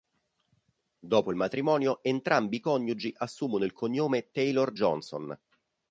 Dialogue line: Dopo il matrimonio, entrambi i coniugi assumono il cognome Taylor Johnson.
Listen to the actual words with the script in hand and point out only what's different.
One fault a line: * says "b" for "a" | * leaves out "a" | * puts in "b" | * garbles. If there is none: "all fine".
all fine